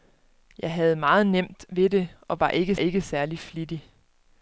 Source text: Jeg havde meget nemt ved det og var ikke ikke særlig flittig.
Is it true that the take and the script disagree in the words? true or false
false